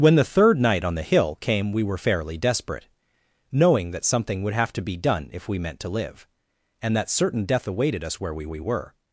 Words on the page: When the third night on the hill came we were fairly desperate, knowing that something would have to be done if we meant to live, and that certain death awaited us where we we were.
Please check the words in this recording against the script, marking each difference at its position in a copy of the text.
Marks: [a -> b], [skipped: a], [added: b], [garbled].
When the third night on the hill came we were fairly desperate, knowing that something would have to be done if we meant to live, and that certain death awaited us where we we were.